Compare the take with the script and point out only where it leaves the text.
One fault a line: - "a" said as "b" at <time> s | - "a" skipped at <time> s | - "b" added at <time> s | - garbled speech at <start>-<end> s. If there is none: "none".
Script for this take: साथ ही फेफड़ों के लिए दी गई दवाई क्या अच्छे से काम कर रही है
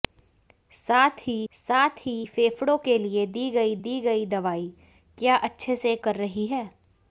- "साथ ही" added at 1.5 s
- "दी गई" added at 3.8 s
- "काम" skipped at 5.9 s